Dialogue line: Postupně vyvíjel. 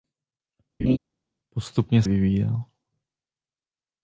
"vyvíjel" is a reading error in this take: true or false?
false